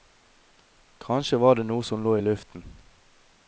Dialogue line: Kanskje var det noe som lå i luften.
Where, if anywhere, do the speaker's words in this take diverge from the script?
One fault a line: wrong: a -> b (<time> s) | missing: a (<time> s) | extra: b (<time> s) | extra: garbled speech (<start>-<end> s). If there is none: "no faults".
no faults